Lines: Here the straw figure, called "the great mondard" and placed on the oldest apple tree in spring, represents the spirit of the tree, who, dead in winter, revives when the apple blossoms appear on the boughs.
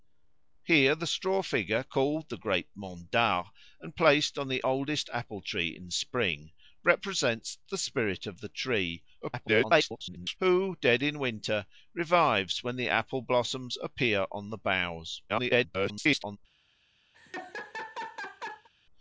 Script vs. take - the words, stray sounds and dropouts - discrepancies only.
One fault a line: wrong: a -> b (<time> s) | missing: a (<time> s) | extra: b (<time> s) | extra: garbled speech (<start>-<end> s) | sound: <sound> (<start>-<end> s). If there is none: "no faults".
extra: garbled speech (9.2-10.4 s)
extra: garbled speech (15.3-16.4 s)
sound: laugh (17.1-18.7 s)